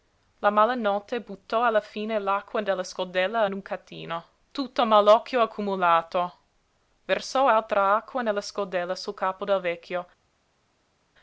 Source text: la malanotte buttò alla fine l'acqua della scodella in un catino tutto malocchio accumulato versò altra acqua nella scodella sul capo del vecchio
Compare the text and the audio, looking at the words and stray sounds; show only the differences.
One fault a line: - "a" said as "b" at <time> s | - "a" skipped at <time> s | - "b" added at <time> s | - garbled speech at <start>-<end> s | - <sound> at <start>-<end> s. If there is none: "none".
none